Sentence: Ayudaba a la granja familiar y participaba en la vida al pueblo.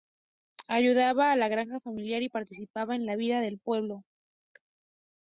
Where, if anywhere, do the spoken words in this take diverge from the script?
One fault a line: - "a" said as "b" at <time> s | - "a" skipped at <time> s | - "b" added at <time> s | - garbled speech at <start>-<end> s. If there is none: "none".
- "al" said as "del" at 3.4 s